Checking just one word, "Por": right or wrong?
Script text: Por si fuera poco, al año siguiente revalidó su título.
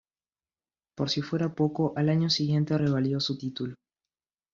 right